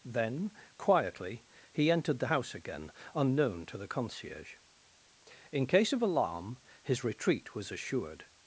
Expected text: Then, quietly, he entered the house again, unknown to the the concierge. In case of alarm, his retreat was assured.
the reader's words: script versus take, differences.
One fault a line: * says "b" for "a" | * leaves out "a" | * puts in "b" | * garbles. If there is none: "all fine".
* leaves out "the"